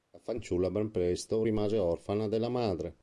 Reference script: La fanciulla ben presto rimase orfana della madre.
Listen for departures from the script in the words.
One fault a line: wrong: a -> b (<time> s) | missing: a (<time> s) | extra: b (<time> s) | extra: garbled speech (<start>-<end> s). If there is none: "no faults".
no faults